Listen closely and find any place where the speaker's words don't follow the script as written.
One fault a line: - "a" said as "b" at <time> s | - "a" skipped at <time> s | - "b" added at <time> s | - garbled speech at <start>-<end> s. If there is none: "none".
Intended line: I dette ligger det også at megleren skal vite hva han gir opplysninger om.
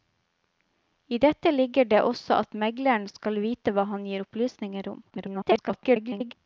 - garbled speech at 5.1-6.3 s